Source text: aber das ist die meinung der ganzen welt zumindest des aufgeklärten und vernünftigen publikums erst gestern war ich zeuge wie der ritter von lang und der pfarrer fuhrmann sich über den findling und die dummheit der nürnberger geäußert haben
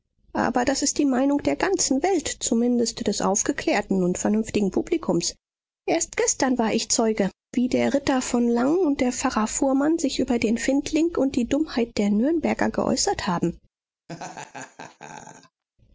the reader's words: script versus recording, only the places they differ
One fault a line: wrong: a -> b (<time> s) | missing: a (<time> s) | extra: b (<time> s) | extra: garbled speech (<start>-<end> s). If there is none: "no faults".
no faults